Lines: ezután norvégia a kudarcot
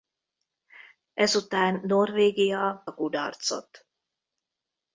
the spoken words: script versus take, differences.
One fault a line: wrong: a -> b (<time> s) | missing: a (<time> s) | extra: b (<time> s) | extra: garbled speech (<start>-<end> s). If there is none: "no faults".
no faults